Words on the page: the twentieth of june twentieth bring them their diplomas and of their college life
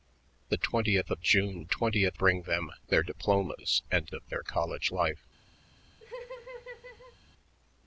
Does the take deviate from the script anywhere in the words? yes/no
no